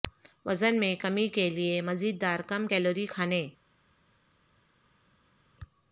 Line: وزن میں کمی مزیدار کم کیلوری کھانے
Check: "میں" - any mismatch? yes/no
no